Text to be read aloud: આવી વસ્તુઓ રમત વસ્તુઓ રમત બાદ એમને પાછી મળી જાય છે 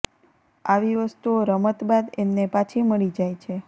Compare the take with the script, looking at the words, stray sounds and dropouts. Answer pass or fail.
fail